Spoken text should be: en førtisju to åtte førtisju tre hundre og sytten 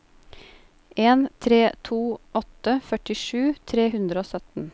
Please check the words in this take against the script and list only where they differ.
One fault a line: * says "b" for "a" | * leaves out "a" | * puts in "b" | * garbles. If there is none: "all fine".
* says "tre" for "førtisju"